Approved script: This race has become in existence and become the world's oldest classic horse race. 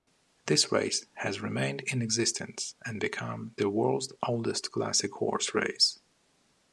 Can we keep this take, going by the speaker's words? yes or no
no